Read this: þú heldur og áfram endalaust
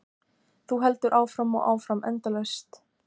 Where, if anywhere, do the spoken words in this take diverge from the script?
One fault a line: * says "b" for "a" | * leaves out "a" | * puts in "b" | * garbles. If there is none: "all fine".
* puts in "áfram"